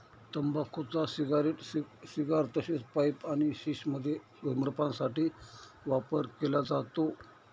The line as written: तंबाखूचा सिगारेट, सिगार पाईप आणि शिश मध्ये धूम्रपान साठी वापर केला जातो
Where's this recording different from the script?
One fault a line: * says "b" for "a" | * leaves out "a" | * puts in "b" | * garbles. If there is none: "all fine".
* puts in "तसेच"